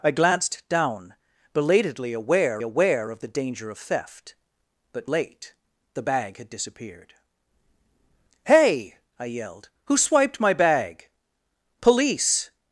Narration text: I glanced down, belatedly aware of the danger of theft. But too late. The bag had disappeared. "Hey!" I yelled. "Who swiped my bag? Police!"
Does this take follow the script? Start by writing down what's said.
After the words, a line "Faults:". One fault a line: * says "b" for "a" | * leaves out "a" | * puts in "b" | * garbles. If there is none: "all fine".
I glanced down, belatedly aware aware of the danger of theft. But late. The bag had disappeared. "Hey!" I yelled. "Who swiped my bag? Police!"
Faults:
* puts in "aware"
* leaves out "too"